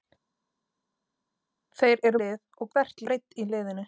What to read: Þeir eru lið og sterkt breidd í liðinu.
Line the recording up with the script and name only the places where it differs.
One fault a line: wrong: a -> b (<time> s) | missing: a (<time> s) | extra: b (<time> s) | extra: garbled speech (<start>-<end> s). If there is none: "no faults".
no faults